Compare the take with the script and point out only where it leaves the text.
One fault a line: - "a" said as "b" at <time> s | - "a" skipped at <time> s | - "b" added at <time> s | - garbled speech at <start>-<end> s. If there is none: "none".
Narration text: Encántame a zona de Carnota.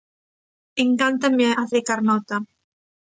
- "zona" skipped at 1.6 s